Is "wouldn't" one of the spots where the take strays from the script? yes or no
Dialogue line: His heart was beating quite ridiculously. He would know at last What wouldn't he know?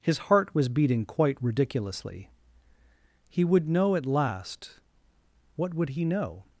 yes